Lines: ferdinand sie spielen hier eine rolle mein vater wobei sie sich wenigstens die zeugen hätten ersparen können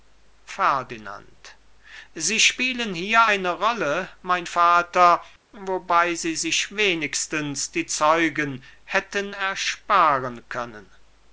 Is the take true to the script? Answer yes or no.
yes